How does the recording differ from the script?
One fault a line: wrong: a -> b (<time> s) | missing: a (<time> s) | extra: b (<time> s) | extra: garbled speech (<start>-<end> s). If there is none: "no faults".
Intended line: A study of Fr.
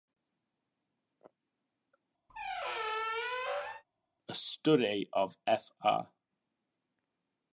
no faults